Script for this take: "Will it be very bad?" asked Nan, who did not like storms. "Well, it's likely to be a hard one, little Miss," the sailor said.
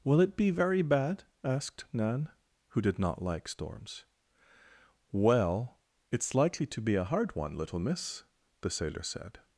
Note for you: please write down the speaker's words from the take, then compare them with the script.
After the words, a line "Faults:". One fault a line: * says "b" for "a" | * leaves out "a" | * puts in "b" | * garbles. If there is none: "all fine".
"Will it be very bad?" asked Nan, who did not like storms. "Well, it's likely to be a hard one, little Miss," the sailor said.
Faults:
all fine